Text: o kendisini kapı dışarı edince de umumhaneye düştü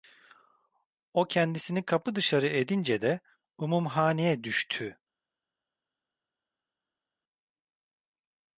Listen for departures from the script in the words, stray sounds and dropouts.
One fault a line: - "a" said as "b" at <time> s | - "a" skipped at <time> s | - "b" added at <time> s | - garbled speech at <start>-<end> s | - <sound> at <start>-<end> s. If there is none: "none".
none